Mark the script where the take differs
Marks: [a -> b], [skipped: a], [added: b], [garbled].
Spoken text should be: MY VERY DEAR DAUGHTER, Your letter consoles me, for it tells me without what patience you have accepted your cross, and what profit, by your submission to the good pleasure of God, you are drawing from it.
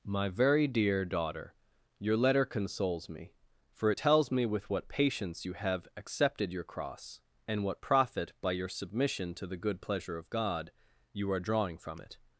MY VERY DEAR DAUGHTER, Your letter consoles me, for it tells me [without -> with] what patience you have accepted your cross, and what profit, by your submission to the good pleasure of God, you are drawing from it.